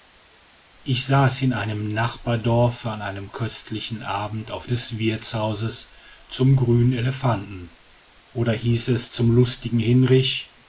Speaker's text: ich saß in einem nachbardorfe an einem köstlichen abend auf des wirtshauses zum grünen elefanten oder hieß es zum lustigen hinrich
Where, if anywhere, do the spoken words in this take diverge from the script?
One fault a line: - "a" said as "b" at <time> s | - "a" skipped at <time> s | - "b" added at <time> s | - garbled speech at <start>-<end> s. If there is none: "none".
none